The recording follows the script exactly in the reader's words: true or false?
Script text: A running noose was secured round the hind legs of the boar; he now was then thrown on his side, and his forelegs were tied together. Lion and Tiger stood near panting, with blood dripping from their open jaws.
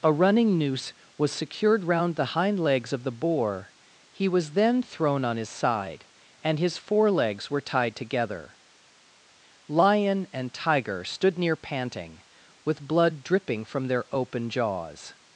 false